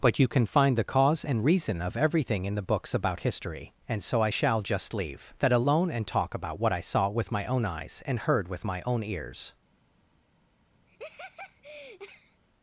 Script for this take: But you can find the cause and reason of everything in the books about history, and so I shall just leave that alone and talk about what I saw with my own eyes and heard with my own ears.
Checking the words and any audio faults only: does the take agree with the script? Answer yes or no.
no